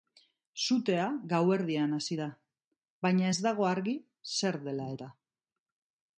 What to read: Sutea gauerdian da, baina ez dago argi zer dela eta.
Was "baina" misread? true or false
false